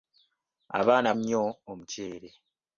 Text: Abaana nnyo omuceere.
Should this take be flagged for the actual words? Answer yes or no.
no